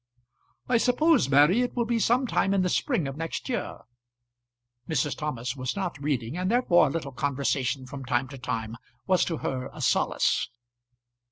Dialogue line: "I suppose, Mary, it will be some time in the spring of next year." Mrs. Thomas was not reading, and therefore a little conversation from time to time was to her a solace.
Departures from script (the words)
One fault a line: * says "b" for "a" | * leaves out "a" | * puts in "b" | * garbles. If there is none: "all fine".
all fine